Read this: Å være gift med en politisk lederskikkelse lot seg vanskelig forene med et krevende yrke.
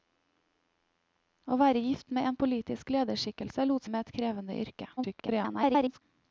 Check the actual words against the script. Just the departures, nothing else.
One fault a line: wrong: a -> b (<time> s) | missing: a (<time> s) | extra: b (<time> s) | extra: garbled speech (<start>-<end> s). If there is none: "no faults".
missing: seg vanskelig forene (3.9 s)
extra: garbled speech (5.0-6.0 s)